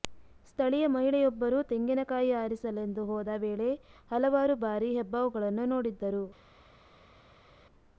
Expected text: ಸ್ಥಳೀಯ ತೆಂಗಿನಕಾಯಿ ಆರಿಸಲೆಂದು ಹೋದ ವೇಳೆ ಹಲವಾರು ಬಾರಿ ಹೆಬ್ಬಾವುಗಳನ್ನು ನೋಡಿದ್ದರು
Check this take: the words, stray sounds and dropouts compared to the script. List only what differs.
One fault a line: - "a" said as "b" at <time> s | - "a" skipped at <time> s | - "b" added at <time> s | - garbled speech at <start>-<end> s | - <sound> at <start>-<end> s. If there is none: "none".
- "ಮಹಿಳೆಯೊಬ್ಬರು" added at 0.9 s